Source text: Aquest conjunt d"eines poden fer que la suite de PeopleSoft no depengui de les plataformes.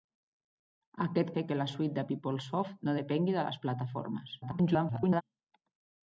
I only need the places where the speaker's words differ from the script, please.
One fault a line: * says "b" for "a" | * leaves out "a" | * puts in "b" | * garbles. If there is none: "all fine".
* leaves out "conjunt d"eines poden"
* garbles